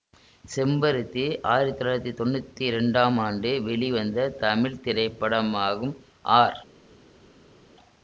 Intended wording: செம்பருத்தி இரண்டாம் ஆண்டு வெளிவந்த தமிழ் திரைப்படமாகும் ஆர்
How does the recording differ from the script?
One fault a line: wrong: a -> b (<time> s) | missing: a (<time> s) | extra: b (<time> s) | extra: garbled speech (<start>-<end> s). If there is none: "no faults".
extra: ஆயிரத்தி தொள்ளாயிரத்தி தொன்னூத்தி (1.5 s)